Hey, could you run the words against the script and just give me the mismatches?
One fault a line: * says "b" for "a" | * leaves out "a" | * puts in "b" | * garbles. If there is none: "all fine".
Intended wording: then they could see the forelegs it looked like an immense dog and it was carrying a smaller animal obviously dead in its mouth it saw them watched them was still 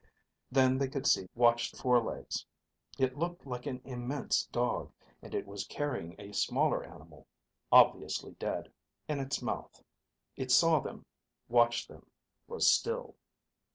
* says "watched" for "the"